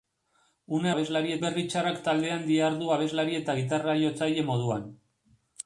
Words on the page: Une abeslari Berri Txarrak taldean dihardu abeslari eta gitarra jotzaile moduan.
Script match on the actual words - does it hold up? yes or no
yes